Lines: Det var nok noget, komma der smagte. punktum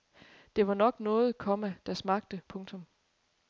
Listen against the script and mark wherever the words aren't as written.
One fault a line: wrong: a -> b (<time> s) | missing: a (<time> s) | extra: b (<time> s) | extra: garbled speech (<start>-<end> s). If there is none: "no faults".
no faults